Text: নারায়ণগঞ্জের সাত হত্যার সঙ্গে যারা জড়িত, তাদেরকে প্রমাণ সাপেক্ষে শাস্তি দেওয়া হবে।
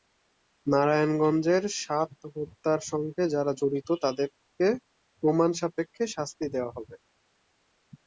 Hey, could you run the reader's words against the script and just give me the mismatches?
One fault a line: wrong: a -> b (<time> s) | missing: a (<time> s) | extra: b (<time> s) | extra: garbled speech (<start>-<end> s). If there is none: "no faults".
no faults